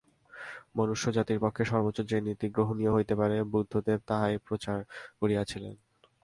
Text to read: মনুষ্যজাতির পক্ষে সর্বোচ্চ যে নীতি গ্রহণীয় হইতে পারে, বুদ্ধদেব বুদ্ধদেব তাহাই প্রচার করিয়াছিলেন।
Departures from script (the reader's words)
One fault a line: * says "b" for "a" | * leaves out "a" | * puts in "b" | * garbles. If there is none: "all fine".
* leaves out "বুদ্ধদেব"